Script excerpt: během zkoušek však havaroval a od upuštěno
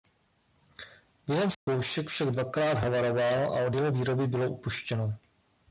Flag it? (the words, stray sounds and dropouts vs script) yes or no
yes